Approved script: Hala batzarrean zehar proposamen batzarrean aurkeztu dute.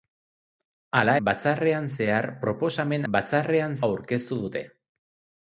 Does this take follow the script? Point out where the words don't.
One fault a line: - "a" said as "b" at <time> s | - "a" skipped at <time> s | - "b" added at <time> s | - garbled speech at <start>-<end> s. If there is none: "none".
none